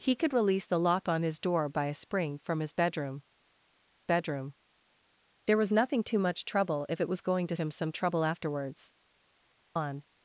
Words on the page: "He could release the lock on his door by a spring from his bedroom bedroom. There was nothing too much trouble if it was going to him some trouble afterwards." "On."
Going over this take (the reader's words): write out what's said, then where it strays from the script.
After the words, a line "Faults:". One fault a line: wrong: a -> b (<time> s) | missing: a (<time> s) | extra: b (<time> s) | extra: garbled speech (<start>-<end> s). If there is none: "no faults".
"He could release the lock on his door by a spring from his bedroom bedroom. There was nothing too much trouble if it was going to him some trouble afterwards." "On."
Faults:
no faults